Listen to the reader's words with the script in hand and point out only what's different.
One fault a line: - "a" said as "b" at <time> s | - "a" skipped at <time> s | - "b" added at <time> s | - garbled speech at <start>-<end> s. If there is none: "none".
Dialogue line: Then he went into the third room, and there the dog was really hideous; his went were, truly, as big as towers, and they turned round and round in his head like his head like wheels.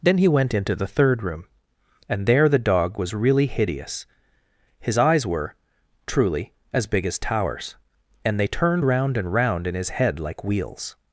- "went" said as "eyes" at 5.0 s
- "his head like" skipped at 10.4 s